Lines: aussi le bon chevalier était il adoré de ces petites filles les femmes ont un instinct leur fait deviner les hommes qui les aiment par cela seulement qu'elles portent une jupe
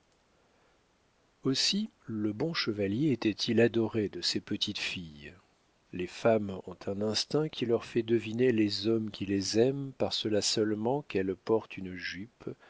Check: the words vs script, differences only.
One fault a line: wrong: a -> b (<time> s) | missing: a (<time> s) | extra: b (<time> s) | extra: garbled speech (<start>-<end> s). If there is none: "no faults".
extra: qui (7.5 s)